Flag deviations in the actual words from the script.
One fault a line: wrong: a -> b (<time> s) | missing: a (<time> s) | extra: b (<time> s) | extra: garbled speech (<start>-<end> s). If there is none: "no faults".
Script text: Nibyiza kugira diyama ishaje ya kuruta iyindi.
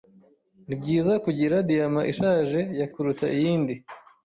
no faults